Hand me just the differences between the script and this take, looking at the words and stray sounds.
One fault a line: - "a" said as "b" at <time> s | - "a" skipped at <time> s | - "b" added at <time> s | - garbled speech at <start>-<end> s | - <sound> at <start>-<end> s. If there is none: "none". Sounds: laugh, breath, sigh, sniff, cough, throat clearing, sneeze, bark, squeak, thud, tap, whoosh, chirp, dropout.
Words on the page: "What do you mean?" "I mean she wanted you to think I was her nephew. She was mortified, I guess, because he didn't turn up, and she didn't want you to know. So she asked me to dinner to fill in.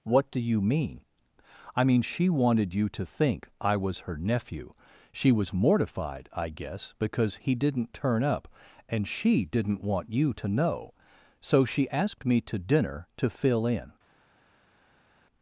none